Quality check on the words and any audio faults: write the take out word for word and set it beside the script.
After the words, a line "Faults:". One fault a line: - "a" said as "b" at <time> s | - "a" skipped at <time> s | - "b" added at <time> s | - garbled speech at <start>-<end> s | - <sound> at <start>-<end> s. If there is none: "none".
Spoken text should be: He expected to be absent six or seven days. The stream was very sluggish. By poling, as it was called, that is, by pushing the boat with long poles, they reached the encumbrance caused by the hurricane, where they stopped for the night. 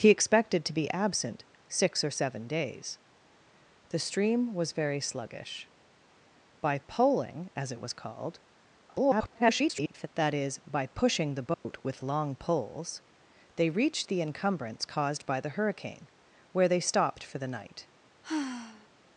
He expected to be absent six or seven days. The stream was very sluggish. By poling, as it was called, [garbled] that is, by pushing the boat with long poles, they reached the encumbrance caused by the hurricane, where they stopped for the night.
Faults:
- garbled speech at 8.9-10.1 s
- dropout at 11.5-11.7 s
- sigh at 18.2-18.9 s